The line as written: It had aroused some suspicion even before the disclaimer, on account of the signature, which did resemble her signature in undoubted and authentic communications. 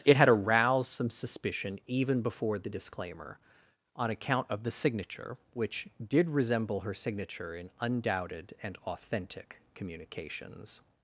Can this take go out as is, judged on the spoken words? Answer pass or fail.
pass